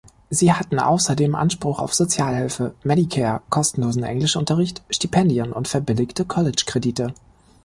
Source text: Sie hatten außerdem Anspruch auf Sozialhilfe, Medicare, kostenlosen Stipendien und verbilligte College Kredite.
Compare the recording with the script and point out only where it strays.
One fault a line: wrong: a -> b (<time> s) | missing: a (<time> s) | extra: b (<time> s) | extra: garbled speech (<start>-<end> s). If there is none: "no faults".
extra: Englischunterricht (4.0 s)